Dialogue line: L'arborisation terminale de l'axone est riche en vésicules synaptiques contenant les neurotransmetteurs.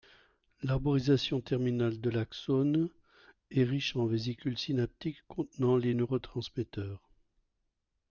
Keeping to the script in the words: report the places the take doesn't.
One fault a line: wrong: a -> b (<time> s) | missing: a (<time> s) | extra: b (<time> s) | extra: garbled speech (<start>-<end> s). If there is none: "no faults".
no faults